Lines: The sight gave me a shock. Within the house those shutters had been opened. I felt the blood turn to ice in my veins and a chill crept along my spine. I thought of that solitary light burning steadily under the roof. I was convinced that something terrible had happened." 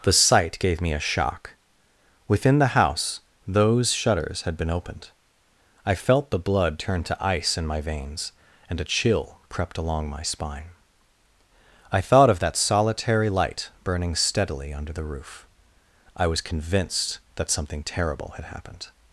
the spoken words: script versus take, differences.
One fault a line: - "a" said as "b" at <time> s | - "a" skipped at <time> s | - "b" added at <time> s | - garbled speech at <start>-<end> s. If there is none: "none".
none